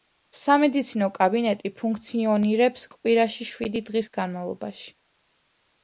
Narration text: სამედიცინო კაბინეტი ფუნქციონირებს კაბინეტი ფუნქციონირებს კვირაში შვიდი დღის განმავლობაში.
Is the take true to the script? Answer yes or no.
no